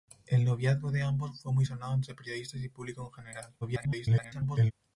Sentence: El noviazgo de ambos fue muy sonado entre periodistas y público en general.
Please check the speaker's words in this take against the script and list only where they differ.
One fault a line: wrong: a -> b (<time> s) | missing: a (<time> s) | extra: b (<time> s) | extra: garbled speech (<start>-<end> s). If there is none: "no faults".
extra: garbled speech (3.6-4.7 s)